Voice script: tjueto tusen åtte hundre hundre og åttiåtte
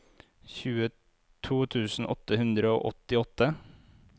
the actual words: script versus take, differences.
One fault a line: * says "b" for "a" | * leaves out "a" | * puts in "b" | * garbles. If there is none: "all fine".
* leaves out "hundre"